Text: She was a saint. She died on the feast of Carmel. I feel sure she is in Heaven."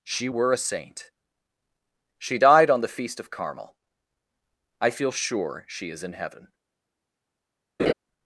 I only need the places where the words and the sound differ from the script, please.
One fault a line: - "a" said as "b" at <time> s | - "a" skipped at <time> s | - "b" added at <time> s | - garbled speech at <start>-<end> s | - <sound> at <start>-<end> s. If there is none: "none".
- "was" said as "were" at 0.3 s
- laugh at 7.8-7.9 s